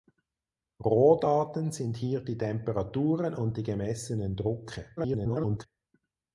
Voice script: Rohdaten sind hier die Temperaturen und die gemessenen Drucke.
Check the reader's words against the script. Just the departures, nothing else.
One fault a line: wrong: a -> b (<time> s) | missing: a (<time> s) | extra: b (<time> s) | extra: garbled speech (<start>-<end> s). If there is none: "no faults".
extra: garbled speech (5.0-5.7 s)